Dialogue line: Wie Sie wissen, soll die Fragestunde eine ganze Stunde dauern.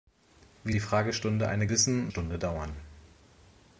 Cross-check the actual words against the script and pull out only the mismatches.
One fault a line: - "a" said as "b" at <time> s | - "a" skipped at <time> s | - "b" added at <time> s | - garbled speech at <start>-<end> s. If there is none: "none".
- "Sie wissen soll" skipped at 0.7 s
- "ganze" said as "wissen" at 1.7 s